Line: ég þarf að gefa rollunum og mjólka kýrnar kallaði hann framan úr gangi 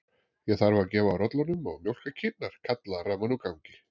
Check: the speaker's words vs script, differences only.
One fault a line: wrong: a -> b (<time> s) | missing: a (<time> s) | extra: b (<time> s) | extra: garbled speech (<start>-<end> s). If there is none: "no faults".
missing: hann (3.0 s)